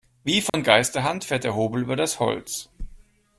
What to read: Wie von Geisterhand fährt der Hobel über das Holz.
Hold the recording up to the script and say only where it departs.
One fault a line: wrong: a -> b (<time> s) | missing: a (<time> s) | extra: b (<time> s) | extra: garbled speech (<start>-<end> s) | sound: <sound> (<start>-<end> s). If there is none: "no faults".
sound: dropout (0.5-0.5 s)